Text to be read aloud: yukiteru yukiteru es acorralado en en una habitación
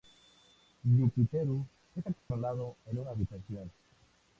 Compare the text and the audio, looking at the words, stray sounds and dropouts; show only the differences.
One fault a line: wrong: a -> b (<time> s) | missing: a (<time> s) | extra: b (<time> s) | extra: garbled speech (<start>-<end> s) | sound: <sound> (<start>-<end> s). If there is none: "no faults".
missing: yukiteru (1.6 s)
sound: dropout (2.2-2.3 s)
missing: en (3.0 s)